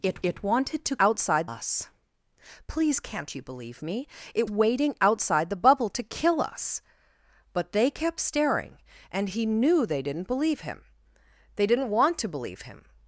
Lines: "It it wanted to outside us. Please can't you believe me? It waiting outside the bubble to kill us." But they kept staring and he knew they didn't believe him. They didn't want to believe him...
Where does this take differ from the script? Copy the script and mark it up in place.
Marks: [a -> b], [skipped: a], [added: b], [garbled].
"It it wanted to outside us. Please can't you believe me? It waiting outside the bubble to kill us." But they kept staring and he knew they didn't believe him. They didn't want to believe him...